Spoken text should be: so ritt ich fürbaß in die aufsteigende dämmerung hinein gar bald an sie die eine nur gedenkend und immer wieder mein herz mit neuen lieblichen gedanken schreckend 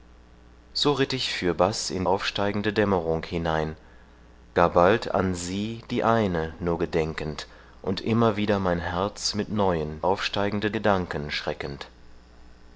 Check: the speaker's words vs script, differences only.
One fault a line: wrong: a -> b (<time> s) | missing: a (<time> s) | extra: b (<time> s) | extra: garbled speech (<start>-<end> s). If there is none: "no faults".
missing: die (2.1 s)
wrong: lieblichen -> aufsteigende (10.0 s)